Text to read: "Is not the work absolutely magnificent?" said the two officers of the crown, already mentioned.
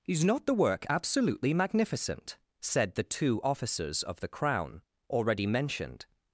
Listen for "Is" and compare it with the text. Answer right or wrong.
right